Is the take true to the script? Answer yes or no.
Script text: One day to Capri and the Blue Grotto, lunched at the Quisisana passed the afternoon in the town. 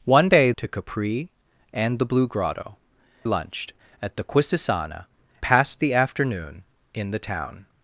yes